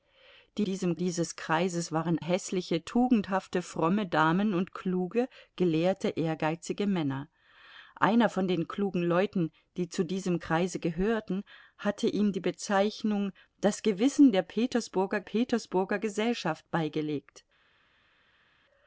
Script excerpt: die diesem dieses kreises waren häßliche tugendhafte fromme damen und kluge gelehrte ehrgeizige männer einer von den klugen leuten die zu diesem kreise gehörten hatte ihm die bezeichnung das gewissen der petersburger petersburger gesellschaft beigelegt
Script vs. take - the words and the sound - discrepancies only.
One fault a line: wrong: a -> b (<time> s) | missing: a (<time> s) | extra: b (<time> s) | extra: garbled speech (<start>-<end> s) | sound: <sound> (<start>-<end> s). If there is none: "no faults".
no faults